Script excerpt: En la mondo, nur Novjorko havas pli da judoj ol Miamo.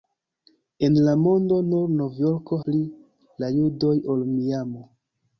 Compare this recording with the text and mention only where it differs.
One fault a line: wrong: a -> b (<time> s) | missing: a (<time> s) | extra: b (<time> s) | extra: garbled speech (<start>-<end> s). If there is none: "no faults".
missing: havas (2.6 s)